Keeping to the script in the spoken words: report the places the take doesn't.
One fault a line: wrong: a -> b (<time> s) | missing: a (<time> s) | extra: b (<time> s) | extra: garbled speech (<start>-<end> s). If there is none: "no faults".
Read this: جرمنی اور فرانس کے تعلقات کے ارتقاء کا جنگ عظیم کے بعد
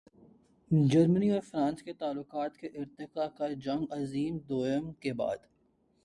extra: دوئم (4.4 s)